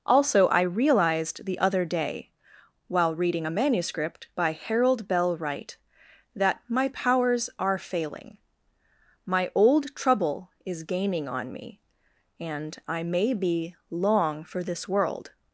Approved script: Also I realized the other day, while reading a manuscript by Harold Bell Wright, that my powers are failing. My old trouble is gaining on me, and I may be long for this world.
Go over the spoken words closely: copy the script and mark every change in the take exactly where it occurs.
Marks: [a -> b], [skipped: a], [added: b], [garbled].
Also I realized the other day, while reading a manuscript by Harold Bell Wright, that my powers are failing. My old trouble is gaining on me, and I may be long for this world.